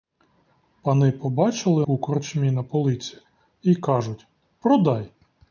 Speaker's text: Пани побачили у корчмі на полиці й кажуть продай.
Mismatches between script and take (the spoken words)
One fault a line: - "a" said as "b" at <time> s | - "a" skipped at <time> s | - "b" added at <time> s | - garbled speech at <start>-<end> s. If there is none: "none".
none